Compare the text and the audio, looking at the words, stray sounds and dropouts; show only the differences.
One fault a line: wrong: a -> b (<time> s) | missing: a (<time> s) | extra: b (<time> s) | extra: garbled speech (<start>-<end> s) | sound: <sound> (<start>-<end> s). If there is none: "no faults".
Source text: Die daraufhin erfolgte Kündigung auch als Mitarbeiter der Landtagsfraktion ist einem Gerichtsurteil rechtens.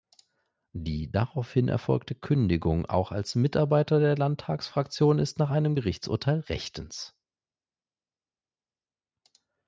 extra: nach (5.4 s)